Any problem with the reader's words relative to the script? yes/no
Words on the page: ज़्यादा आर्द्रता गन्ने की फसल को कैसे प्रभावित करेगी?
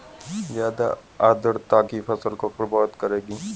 yes